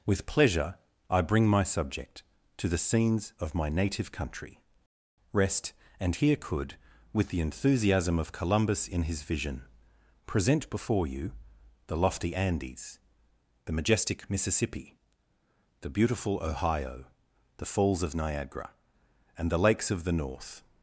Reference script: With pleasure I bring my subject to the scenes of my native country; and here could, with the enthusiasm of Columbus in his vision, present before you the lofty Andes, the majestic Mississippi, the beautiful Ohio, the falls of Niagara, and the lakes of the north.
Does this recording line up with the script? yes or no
no